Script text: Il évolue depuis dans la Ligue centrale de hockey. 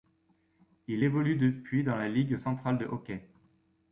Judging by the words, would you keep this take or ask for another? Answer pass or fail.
pass